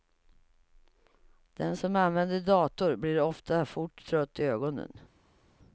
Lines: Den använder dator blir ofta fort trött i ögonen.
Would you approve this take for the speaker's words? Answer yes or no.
no